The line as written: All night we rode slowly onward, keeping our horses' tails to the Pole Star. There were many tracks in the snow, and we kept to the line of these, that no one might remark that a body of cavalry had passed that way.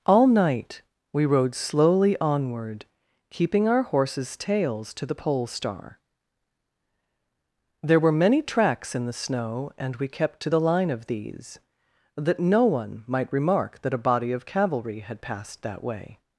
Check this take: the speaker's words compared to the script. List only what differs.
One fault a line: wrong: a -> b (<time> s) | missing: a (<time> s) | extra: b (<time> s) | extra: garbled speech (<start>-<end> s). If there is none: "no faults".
no faults